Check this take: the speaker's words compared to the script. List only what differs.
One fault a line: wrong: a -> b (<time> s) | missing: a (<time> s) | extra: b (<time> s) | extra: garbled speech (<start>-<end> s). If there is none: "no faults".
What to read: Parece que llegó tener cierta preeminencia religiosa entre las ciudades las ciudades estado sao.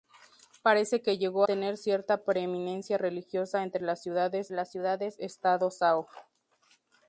no faults